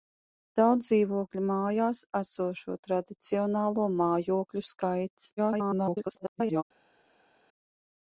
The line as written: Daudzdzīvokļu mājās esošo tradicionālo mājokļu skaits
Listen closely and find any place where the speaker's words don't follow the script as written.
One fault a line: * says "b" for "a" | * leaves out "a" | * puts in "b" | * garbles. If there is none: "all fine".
* garbles